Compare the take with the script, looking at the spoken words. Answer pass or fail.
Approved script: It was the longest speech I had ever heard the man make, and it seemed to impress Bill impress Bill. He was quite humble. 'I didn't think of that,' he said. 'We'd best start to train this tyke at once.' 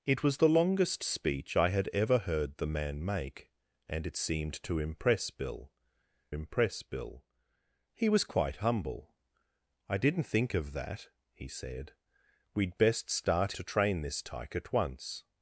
pass